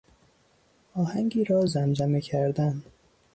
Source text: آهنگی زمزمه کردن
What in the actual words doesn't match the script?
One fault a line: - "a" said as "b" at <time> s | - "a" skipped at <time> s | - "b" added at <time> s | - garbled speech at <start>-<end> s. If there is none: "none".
- "را" added at 1.4 s